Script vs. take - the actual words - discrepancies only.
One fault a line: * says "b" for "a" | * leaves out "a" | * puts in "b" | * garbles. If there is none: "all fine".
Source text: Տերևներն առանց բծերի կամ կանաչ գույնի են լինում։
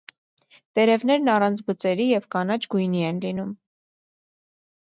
* says "և" for "կամ"